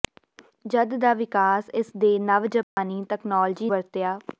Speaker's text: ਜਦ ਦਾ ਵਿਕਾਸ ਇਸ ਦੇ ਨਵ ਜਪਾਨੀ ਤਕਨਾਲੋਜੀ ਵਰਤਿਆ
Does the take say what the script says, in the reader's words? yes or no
yes